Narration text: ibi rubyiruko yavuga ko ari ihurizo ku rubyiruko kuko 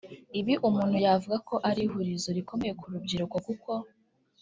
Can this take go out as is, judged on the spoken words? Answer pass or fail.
fail